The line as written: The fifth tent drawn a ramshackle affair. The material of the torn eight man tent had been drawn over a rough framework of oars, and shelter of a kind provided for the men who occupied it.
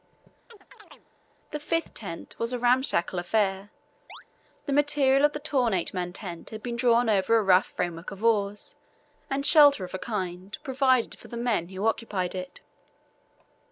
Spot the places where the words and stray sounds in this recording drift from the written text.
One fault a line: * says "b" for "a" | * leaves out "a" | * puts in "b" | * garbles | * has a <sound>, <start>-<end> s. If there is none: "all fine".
* has a chirp, 0.5-1.1 s
* says "was" for "drawn"
* has a chirp, 4.1-4.2 s